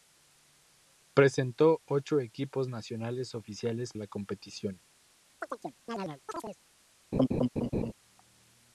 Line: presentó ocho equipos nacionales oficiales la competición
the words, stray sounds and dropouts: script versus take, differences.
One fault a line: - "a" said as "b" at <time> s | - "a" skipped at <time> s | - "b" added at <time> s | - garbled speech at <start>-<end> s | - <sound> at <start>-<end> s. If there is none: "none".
- chirp at 5.4-6.6 s
- laugh at 7.1-7.9 s